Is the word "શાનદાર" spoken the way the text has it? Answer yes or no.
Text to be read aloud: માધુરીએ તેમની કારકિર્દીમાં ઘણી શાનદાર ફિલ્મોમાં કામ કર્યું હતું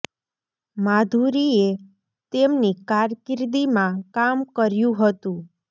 no